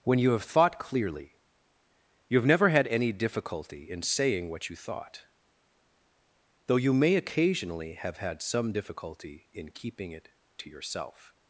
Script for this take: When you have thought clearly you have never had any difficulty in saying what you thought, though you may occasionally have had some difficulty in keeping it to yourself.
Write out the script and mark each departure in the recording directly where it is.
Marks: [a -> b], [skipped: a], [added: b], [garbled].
When you have thought clearly you have never had any difficulty in saying what you thought, though you may occasionally have had some difficulty in keeping it to yourself.